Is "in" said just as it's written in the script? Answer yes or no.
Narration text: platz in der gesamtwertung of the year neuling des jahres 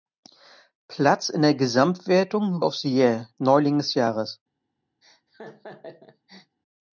yes